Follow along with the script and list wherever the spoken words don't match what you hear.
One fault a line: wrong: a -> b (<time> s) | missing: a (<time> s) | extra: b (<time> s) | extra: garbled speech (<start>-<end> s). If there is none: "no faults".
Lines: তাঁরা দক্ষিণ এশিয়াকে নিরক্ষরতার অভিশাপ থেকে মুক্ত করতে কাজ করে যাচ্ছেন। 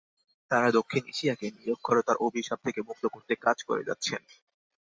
no faults